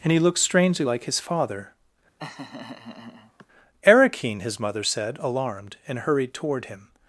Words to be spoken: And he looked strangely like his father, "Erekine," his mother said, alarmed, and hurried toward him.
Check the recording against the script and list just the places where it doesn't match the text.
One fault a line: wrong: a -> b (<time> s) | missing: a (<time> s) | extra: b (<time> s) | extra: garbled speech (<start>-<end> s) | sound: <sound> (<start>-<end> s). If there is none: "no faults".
sound: laugh (2.2-3.5 s)